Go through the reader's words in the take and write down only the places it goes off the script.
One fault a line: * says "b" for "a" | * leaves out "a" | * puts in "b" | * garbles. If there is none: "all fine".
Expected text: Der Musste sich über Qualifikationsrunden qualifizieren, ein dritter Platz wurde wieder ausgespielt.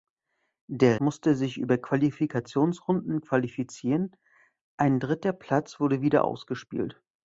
all fine